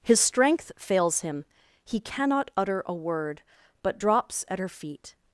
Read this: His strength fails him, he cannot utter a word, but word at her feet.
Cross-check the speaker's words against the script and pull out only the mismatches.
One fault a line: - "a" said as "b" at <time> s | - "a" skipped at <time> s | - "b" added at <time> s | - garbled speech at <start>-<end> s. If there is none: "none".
- "word" said as "drops" at 4.0 s